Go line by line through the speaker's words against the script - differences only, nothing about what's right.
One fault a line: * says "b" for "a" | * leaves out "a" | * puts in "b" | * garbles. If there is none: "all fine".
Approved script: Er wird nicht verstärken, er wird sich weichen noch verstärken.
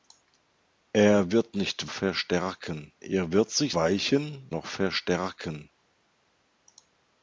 all fine